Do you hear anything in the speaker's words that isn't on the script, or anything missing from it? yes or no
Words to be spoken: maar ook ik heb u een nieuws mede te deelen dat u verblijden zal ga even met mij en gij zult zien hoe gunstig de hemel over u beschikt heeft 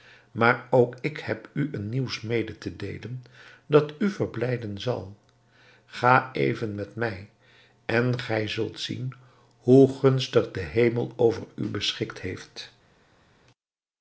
no